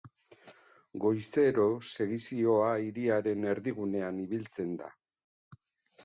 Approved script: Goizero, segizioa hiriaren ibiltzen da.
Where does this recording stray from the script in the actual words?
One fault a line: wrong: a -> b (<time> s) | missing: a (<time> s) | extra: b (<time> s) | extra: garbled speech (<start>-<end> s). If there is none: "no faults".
extra: erdigunean (3.5 s)